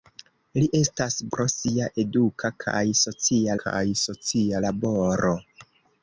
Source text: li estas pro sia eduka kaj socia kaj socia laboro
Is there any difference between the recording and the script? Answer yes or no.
no